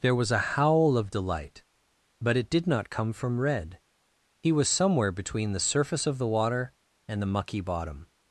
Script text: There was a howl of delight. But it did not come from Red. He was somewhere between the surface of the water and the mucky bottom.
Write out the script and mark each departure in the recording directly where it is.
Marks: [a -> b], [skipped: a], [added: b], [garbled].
There was a howl of delight. But it did not come from Red. He was somewhere between the surface of the water and the mucky bottom.